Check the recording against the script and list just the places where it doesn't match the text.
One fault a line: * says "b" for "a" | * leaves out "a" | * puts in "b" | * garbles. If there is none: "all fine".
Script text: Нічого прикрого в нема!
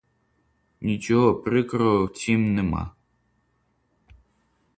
* puts in "цім"